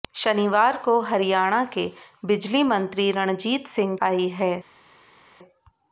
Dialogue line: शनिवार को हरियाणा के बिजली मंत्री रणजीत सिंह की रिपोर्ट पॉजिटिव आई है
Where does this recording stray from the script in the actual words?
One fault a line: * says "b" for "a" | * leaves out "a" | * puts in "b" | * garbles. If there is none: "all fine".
* leaves out "की रिपोर्ट पॉजिटिव"